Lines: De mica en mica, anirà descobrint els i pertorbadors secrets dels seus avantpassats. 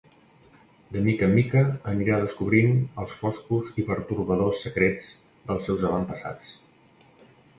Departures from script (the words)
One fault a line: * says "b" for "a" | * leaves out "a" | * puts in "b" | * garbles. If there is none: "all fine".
* puts in "foscos"